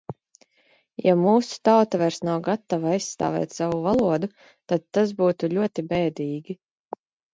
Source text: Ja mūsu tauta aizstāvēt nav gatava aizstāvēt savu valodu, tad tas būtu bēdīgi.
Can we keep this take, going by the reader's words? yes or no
no